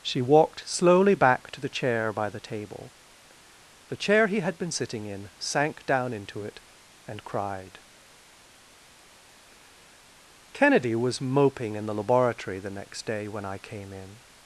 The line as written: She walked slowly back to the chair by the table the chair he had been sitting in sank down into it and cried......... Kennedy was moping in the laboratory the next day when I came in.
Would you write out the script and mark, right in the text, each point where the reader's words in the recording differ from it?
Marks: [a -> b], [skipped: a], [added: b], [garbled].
She walked slowly back to the chair by the table the chair he had been sitting in sank down into it and cried......... Kennedy was moping in the laboratory the next day when I came in.